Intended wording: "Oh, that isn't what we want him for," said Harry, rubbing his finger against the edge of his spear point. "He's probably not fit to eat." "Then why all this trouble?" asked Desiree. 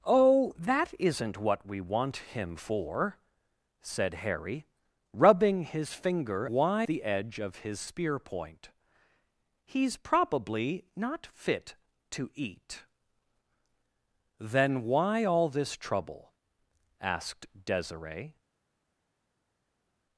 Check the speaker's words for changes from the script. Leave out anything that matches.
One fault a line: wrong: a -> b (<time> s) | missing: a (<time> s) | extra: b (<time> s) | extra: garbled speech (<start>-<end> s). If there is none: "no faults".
wrong: against -> why (6.5 s)